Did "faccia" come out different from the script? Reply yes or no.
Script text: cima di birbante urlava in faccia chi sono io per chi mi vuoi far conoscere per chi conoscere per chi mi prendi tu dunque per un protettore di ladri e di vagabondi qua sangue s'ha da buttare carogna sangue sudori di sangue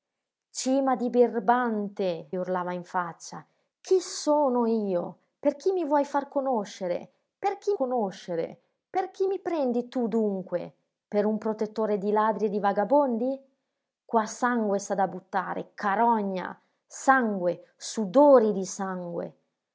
no